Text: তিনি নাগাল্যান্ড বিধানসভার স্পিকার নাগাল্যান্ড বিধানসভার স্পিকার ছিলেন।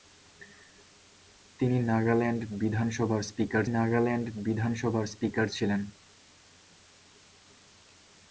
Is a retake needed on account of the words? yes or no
no